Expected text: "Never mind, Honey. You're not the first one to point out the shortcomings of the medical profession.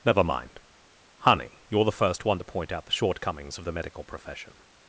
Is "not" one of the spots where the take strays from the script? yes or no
yes